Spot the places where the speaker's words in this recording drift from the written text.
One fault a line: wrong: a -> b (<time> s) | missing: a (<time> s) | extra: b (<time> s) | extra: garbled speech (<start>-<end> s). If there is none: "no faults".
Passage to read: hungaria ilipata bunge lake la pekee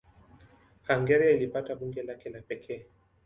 no faults